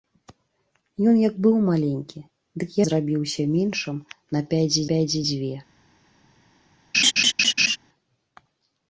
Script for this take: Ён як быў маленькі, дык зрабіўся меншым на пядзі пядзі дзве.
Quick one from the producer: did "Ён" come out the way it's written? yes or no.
yes